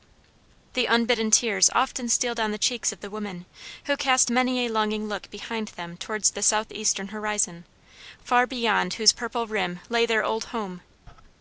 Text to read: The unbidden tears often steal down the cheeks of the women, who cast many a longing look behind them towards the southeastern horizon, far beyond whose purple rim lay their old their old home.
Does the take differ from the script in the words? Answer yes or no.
yes